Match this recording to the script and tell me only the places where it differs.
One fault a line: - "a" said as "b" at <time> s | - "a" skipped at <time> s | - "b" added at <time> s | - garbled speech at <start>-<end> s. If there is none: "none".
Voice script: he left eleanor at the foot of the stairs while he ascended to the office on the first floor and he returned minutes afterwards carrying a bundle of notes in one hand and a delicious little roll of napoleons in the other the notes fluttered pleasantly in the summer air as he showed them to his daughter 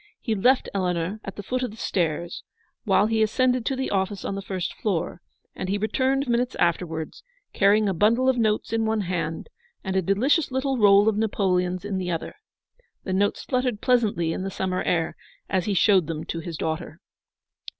none